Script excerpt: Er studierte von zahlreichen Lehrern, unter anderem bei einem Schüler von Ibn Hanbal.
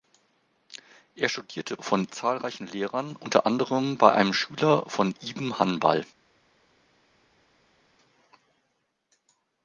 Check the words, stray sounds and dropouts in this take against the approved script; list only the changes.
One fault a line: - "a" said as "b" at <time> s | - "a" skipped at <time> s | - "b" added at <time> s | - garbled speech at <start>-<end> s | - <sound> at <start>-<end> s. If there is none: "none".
none